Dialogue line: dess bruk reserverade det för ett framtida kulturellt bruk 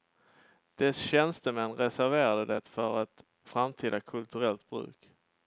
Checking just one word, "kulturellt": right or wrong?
right